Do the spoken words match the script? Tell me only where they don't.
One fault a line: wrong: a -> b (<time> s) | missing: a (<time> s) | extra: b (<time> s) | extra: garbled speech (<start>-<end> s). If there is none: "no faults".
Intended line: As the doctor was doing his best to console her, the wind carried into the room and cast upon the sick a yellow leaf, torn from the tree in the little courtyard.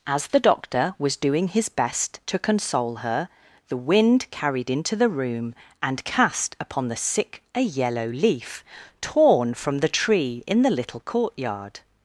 no faults